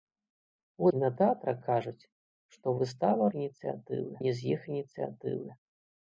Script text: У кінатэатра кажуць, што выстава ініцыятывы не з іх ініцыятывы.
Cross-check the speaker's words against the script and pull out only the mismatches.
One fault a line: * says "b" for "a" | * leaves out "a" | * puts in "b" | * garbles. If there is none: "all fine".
all fine